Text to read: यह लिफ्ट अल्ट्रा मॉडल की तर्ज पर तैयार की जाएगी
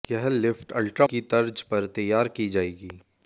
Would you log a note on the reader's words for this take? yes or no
yes